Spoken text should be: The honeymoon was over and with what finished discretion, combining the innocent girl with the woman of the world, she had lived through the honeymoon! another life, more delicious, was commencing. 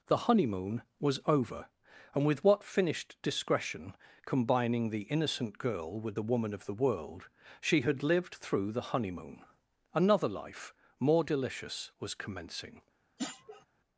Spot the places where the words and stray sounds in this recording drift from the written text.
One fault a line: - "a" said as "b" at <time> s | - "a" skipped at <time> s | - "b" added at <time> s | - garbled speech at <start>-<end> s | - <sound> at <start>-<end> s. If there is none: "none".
- sniff at 13.2-13.7 s